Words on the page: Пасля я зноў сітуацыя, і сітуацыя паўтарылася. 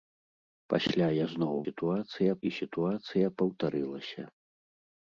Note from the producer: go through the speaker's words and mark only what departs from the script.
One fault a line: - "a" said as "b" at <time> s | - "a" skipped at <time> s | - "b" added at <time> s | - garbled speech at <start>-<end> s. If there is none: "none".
none